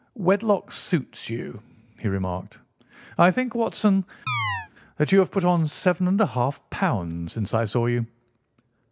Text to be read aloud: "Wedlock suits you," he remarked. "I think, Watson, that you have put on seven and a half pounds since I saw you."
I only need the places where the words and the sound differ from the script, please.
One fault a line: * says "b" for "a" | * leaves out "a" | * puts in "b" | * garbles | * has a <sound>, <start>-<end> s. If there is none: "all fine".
* has a chirp, 4.3-4.7 s